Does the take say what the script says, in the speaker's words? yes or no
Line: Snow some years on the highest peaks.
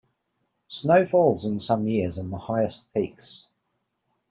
no